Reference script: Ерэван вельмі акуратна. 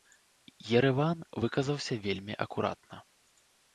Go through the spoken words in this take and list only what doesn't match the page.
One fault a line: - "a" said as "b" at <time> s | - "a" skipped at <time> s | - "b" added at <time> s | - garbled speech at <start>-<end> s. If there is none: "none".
- "выказаўся" added at 1.4 s